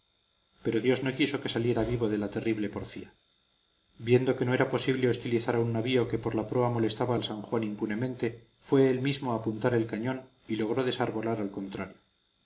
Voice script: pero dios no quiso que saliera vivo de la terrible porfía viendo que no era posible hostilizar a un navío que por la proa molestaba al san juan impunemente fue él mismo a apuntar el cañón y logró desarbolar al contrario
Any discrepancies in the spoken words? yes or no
no